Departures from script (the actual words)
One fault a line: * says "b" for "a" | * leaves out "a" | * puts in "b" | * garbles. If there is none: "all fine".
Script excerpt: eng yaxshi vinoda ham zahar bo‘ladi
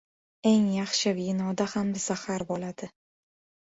all fine